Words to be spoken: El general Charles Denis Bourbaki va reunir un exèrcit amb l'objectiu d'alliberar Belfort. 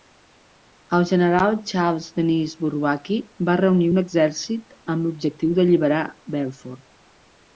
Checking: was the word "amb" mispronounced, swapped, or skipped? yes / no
no